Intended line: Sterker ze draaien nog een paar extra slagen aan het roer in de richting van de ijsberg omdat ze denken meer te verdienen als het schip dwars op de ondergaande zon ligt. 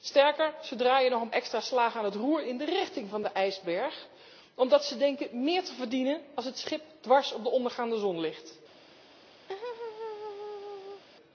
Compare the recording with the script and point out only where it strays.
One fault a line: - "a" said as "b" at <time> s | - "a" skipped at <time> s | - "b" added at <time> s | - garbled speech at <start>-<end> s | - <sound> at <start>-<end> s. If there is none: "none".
- "paar" skipped at 1.3 s
- laugh at 9.5-11.0 s